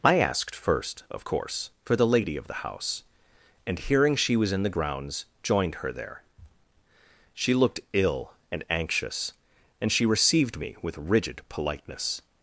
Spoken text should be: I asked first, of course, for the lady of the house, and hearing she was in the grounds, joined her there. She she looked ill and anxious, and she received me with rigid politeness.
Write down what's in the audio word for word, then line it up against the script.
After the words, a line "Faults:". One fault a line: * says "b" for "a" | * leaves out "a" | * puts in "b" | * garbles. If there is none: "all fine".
I asked first, of course, for the lady of the house, and hearing she was in the grounds, joined her there. She looked ill and anxious, and she received me with rigid politeness.
Faults:
* leaves out "she"